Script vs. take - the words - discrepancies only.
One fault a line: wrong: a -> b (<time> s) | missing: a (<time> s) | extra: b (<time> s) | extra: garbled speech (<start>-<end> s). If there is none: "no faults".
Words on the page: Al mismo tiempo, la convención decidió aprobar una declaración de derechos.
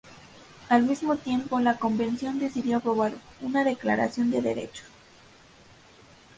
no faults